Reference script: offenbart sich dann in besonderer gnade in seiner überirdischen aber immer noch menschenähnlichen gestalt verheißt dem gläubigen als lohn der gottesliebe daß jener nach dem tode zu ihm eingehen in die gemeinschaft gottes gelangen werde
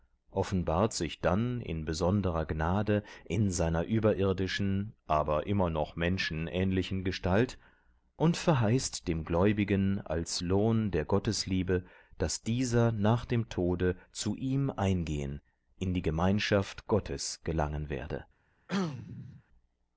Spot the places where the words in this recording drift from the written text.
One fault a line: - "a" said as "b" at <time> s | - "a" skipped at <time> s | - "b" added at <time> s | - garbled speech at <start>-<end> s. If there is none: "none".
- "und" added at 8.2 s
- "jener" said as "dieser" at 12.4 s